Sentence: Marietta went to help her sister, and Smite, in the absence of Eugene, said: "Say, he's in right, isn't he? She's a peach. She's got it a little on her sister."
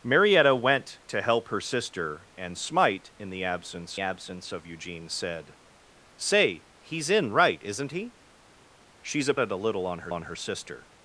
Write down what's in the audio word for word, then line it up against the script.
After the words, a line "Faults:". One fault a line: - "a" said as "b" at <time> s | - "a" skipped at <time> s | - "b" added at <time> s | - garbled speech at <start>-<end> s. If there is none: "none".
Marietta went to help her sister, and Smite, in the absence absence of Eugene, said: "Say, he's in right, isn't he? She's a it a little on her on her sister."
Faults:
- "absence" added at 4.0 s
- "peach She's got" skipped at 9.3 s
- "on her" added at 10.1 s